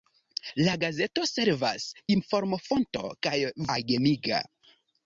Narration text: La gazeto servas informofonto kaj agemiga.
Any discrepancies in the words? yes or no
no